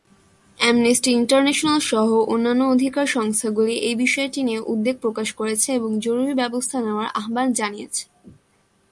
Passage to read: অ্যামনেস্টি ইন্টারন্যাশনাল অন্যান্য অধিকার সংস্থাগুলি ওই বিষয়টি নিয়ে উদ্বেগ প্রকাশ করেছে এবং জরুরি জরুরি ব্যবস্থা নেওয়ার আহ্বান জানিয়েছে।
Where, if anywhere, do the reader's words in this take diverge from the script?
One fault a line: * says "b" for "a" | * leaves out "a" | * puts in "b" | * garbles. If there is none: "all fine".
* puts in "সহ"
* says "এই" for "ওই"
* leaves out "জরুরি"